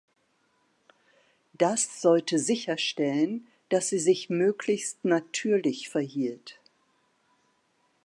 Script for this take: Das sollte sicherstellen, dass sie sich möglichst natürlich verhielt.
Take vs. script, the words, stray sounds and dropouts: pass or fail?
pass